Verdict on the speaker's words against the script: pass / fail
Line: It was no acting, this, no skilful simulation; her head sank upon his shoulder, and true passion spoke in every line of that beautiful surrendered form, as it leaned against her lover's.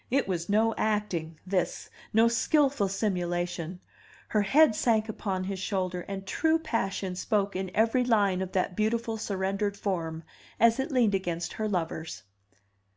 pass